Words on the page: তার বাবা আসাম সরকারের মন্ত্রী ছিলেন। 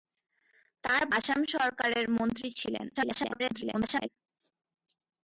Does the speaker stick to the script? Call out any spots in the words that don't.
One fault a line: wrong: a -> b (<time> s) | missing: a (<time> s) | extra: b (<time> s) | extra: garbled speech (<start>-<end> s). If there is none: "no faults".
missing: বাবা (1.0 s)
extra: garbled speech (2.9-4.1 s)